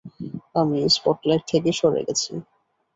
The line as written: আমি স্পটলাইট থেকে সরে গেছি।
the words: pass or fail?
pass